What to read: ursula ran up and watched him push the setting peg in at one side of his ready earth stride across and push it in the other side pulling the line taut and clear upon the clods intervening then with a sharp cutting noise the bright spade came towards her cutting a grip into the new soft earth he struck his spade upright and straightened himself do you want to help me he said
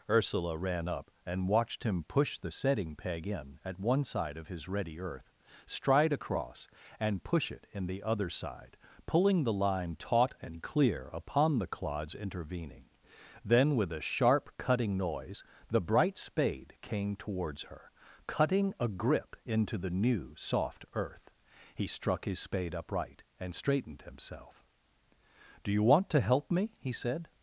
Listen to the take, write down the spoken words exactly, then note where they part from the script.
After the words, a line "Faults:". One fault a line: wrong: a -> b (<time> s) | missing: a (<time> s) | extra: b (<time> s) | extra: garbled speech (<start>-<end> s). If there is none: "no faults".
ursula ran up and watched him push the setting peg in at one side of his ready earth stride across and push it in the other side pulling the line taut and clear upon the clods intervening then with a sharp cutting noise the bright spade came towards her cutting a grip into the new soft earth he struck his spade upright and straightened himself do you want to help me he said
Faults:
no faults